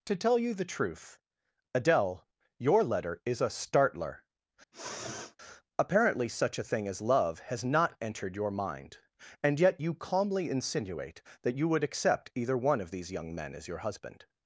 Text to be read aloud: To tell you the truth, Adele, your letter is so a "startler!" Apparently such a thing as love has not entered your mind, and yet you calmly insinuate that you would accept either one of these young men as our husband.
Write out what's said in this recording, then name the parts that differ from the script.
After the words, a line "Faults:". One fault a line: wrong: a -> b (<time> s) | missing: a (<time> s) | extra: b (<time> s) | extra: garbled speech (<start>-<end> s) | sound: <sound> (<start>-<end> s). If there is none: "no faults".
To tell you the truth, Adele, your letter is a "startler!" Apparently such a thing as love has not entered your mind, and yet you calmly insinuate that you would accept either one of these young men as your husband.
Faults:
missing: so (3.4 s)
sound: sniff (4.7-5.4 s)
wrong: our -> your (13.7 s)